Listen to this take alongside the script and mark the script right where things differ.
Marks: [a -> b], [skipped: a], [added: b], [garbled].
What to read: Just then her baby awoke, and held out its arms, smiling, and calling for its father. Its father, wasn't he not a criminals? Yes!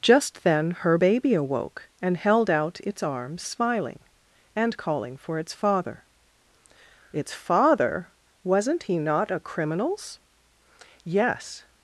Just then her baby awoke, and held out its arms, smiling, and calling for its father. Its father, wasn't he not a criminals? Yes!